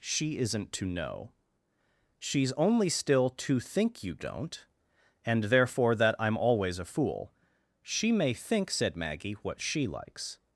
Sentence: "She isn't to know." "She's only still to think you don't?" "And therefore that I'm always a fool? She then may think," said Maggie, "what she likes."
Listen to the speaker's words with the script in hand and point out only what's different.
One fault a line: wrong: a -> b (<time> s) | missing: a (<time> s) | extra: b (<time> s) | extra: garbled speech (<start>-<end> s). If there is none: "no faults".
missing: then (8.1 s)